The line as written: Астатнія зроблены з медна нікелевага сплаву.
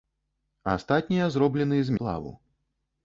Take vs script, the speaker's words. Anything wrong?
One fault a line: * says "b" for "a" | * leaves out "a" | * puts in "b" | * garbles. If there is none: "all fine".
* leaves out "медна нікелевага"